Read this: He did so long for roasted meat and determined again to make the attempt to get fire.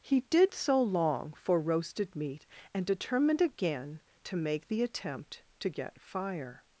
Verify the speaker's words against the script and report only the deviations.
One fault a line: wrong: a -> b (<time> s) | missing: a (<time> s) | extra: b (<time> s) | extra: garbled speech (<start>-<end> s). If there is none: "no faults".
no faults